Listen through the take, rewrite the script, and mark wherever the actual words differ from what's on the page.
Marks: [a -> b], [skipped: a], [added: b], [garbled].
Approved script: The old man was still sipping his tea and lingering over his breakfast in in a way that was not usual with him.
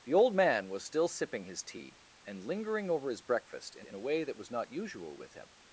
The old man was still sipping his tea and lingering over his breakfast in in a way that was not usual with him.